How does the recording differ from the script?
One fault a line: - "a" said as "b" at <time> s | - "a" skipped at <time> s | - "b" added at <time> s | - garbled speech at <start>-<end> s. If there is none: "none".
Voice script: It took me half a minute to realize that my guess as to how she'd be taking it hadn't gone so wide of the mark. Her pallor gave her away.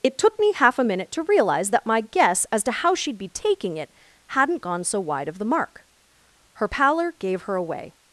none